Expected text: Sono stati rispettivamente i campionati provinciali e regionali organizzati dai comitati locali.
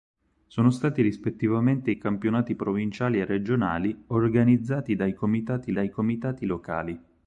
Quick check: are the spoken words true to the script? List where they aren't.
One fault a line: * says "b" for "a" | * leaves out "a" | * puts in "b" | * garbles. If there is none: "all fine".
* puts in "dai comitati"